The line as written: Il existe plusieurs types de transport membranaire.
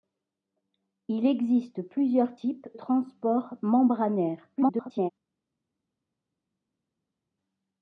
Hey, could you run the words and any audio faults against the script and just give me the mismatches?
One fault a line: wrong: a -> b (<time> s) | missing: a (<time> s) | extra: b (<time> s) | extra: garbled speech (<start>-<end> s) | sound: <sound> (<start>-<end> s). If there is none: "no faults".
missing: de (2.7 s)
extra: garbled speech (4.6-5.1 s)